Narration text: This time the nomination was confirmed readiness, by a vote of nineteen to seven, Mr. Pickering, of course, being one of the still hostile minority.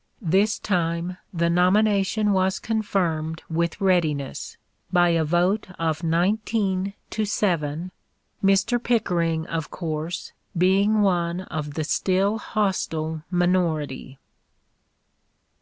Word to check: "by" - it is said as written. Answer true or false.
true